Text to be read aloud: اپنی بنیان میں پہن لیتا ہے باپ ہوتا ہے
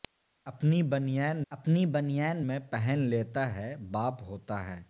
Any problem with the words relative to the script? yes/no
yes